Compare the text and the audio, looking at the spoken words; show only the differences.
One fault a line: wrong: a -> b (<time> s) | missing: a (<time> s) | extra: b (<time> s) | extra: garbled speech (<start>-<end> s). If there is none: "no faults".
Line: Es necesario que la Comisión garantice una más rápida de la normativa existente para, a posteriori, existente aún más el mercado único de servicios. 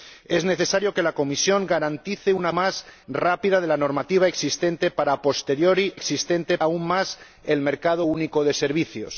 no faults